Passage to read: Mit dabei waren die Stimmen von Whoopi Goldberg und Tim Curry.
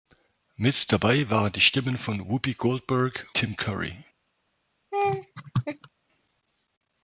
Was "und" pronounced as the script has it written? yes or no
no